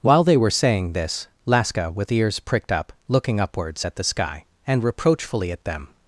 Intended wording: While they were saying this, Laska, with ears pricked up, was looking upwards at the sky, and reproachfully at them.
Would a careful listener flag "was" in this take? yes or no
yes